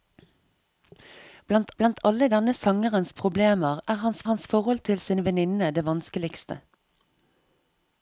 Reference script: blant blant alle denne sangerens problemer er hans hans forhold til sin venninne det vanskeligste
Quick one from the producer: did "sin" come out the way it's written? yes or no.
yes